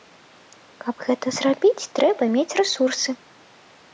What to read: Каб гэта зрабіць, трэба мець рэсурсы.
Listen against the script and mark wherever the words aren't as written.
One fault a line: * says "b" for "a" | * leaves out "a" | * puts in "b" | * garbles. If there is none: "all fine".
all fine